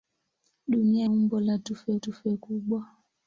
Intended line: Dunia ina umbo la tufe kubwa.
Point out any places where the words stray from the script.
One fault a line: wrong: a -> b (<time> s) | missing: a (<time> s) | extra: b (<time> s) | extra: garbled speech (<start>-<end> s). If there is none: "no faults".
missing: ina (1.1 s)
extra: tufe (2.0 s)